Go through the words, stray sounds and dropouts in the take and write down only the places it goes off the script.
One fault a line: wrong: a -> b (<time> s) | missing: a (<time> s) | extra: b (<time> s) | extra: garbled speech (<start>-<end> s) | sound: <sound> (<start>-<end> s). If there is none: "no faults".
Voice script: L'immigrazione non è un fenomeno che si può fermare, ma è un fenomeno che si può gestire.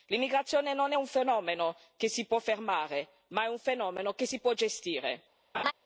sound: laugh (5.5-5.7 s)